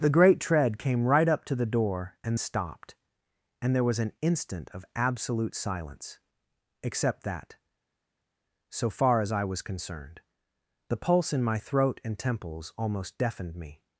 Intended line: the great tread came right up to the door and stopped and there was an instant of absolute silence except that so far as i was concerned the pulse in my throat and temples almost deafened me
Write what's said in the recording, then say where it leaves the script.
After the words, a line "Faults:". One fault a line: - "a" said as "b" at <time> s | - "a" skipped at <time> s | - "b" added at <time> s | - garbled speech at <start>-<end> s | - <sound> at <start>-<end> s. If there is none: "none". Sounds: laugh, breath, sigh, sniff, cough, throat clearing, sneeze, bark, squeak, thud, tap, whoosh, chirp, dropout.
the great tread came right up to the door and stopped and there was an instant of absolute silence except that so far as i was concerned the pulse in my throat and temples almost deafened me
Faults:
none